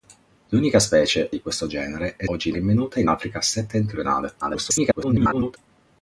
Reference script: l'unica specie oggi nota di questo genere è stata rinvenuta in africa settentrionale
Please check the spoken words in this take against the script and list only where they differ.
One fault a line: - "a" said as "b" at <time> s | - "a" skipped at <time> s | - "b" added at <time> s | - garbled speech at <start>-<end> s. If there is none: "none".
- "oggi nota" skipped at 1.3 s
- "stata" said as "oggi" at 2.3 s
- garbled speech at 4.4-5.6 s